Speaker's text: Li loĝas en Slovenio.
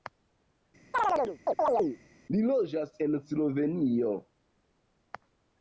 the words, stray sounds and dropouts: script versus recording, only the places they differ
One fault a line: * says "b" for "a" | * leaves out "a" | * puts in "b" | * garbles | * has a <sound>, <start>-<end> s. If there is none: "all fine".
* has a chirp, 0.9-2.0 s